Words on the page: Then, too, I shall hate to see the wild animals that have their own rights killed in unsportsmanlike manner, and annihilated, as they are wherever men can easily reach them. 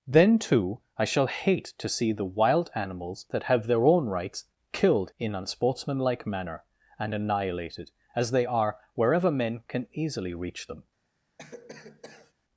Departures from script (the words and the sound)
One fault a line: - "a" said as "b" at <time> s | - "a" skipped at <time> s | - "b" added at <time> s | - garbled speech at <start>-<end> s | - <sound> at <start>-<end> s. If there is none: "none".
- cough at 11.4-12.3 s